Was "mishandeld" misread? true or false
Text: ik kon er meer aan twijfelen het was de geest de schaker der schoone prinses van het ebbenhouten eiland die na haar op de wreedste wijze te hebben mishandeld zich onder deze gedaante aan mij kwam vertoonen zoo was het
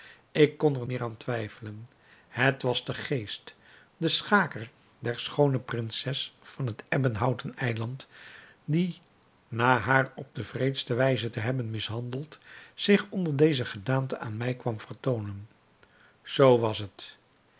false